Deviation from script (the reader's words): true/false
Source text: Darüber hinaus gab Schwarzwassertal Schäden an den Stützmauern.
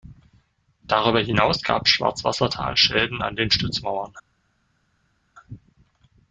false